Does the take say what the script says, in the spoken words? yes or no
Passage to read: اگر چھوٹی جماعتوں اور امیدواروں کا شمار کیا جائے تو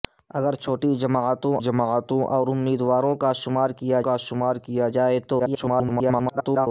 no